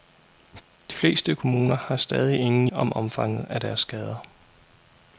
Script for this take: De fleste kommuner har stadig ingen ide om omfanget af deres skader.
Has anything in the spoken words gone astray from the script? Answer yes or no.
yes